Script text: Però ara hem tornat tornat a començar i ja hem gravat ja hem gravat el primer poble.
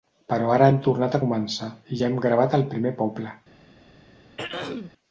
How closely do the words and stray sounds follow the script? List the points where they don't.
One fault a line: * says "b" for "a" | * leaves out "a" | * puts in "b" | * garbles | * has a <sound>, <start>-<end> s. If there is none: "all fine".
* leaves out "tornat"
* leaves out "ja hem gravat"
* has a throat clearing, 4.4-4.9 s